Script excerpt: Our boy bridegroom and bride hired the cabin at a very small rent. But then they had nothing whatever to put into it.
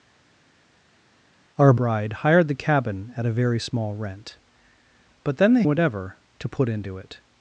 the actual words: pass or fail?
fail